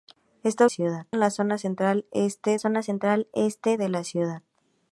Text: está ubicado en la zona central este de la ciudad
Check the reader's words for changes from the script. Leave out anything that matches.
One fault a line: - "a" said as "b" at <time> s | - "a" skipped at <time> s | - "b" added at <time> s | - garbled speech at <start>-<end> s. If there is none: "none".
- "ubicado" said as "ciudad" at 0.7 s
- "zona central este" added at 2.6 s